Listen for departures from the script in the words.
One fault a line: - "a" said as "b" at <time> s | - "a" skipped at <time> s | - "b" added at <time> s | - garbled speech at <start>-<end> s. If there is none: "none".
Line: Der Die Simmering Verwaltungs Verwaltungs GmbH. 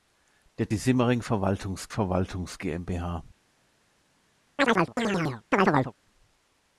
none